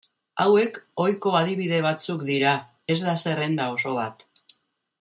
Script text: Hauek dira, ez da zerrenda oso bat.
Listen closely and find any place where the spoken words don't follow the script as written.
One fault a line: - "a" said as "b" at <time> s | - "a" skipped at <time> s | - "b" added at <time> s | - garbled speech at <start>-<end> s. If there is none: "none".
- "ohiko adibide batzuk" added at 1.0 s